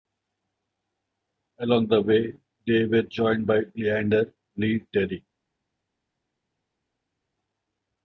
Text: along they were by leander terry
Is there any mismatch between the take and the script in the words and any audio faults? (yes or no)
yes